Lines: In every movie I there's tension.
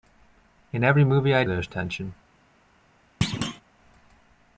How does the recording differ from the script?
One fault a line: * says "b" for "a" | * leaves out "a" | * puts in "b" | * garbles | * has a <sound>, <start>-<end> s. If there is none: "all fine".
* has a thud, 3.2-3.6 s